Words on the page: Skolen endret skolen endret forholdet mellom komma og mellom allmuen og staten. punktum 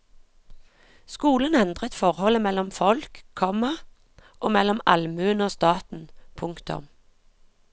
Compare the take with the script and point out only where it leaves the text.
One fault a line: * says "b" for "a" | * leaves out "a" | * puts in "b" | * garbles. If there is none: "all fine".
* leaves out "skolen endret"
* puts in "folk"